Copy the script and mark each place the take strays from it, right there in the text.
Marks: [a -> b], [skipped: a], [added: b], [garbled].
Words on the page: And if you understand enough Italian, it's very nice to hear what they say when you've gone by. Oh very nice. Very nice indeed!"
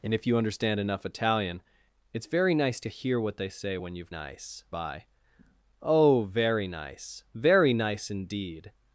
And if you understand enough Italian, it's very nice to hear what they say when you've [gone -> nice] by. Oh very nice. Very nice indeed!"